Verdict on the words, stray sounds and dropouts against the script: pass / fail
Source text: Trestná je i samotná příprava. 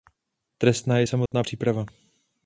fail